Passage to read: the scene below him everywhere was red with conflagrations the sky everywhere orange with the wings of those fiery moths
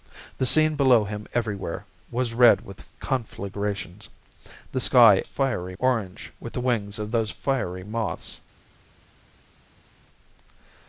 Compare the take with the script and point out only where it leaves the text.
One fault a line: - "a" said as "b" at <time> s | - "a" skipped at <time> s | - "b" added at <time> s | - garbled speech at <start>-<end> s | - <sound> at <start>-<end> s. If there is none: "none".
- "everywhere" said as "fiery" at 5.2 s